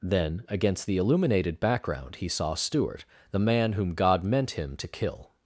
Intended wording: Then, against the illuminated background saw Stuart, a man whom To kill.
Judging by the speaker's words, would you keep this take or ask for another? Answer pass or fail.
fail